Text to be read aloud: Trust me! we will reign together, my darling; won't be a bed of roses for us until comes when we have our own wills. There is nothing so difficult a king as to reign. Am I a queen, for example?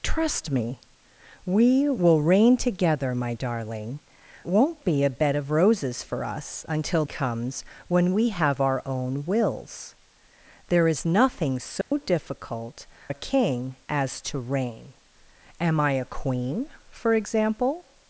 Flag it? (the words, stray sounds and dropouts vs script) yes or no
yes